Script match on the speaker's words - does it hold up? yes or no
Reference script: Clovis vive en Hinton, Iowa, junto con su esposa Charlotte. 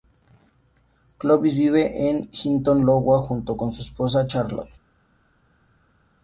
yes